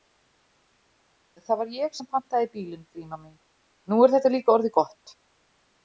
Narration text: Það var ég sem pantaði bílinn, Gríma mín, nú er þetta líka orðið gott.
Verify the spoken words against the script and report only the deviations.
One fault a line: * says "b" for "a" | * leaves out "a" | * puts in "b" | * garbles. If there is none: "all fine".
all fine